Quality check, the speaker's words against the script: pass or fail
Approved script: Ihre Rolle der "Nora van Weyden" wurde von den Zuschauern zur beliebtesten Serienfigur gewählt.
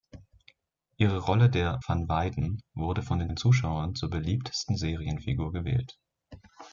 fail